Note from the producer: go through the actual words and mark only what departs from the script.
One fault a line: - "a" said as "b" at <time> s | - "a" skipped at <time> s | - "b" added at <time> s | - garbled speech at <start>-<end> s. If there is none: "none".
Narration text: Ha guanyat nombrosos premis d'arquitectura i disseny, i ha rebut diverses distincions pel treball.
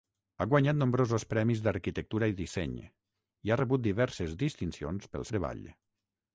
none